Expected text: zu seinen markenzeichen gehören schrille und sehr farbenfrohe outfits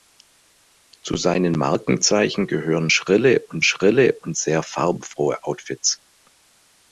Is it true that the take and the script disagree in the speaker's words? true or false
true